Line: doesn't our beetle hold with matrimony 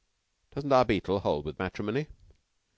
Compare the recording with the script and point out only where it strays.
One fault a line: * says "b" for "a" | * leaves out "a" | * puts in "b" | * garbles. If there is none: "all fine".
all fine